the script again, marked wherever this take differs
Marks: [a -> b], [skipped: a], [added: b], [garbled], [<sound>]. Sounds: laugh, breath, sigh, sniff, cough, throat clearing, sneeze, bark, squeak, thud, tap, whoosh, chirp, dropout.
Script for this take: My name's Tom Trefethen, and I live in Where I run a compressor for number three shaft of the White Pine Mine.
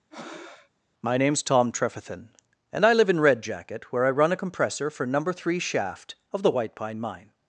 [breath] My name's Tom Trefethen, and I live in [added: Red Jacket] Where I run a compressor for number three shaft of the White Pine Mine.